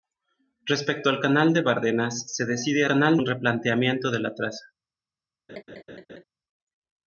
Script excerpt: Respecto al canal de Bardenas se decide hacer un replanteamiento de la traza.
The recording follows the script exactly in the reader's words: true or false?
false